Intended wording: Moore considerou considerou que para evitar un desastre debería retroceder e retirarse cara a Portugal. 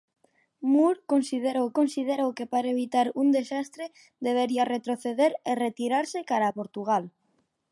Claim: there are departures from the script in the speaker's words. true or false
false